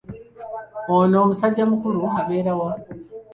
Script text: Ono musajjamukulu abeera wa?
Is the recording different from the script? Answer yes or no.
no